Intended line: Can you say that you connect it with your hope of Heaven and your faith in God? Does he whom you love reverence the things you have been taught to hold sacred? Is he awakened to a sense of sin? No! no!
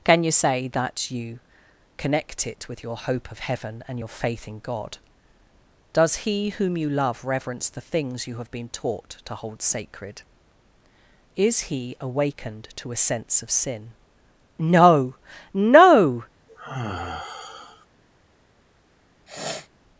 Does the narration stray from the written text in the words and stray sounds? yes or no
yes